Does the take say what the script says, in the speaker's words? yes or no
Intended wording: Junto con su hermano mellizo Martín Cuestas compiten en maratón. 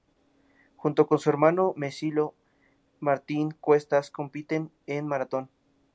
yes